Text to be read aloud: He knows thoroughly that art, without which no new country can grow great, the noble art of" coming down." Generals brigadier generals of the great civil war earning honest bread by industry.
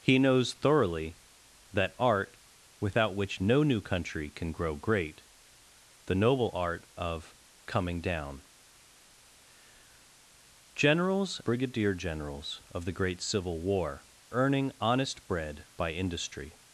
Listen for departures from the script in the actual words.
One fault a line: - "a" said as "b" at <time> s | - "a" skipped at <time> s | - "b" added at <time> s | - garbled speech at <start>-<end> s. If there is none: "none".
none